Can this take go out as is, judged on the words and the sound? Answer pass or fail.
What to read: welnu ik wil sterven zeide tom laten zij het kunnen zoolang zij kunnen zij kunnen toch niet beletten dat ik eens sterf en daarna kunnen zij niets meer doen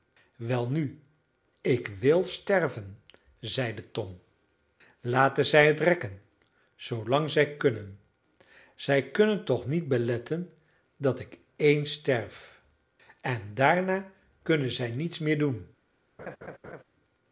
fail